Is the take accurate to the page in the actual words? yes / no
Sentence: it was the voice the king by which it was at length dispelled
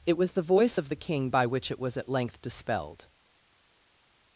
no